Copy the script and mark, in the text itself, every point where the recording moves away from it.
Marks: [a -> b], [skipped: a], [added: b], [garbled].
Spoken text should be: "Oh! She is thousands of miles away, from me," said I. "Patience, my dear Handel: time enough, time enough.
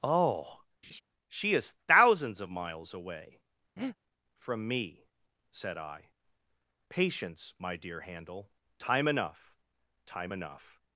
"Oh! She is thousands of miles away, from me," said I. "Patience, my dear Handel: time enough, time enough.